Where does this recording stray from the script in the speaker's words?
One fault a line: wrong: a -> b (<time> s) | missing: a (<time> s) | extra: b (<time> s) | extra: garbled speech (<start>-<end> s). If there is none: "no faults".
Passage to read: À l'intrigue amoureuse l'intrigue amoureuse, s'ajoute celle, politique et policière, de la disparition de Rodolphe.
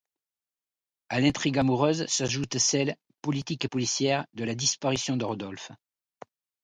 missing: l'intrigue amoureuse (2.1 s)